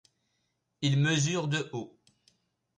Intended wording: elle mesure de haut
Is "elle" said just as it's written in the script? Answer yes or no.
no